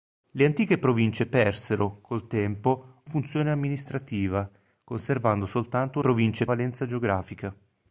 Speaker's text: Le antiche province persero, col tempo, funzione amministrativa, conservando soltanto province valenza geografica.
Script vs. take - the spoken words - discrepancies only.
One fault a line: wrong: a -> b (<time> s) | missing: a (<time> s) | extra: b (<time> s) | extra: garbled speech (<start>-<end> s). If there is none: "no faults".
no faults